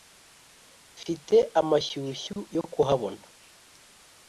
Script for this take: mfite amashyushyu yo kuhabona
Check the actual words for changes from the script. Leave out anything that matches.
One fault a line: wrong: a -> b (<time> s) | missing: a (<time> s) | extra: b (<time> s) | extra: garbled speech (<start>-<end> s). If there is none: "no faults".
no faults